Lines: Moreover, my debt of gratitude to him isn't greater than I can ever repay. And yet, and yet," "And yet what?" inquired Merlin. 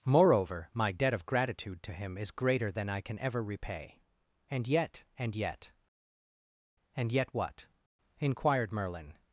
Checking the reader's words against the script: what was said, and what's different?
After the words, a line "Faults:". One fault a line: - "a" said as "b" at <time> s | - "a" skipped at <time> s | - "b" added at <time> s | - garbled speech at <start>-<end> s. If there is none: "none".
Moreover, my debt of gratitude to him is greater than I can ever repay. And yet, and yet," "And yet what?" inquired Merlin.
Faults:
- "isn't" said as "is" at 2.2 s